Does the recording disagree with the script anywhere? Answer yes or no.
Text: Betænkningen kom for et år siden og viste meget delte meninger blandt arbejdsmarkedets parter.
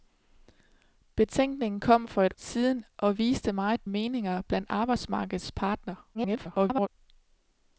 yes